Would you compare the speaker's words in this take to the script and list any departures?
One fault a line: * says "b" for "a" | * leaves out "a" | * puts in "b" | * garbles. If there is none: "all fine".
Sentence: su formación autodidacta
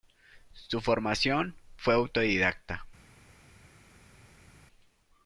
* puts in "fue"